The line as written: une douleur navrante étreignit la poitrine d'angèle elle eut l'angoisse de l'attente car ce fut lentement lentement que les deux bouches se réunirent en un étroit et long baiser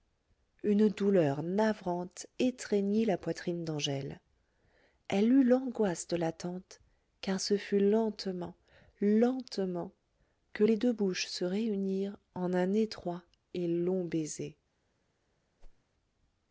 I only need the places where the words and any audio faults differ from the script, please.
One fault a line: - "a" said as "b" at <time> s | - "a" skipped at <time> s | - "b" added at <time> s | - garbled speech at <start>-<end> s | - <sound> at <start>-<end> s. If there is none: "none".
- whoosh at 15.6-15.8 s